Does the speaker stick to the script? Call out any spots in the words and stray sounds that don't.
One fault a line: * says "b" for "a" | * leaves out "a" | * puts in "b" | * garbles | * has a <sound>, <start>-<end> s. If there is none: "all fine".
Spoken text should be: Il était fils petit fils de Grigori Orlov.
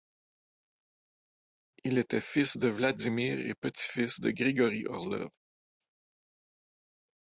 * puts in "de Vladimir et"